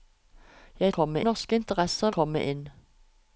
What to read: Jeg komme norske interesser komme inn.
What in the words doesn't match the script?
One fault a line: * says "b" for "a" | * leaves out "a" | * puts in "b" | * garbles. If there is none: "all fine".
all fine